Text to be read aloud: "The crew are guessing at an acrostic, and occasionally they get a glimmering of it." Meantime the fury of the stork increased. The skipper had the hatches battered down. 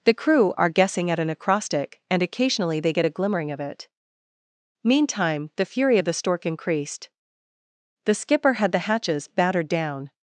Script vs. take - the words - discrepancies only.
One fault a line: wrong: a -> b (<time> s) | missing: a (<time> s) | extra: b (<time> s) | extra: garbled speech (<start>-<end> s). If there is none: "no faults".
no faults